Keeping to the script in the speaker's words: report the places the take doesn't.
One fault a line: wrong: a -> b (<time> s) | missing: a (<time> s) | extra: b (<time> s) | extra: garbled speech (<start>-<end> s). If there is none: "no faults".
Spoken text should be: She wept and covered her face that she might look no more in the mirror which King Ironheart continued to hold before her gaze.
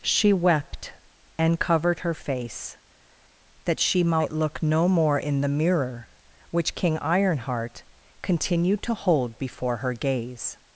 no faults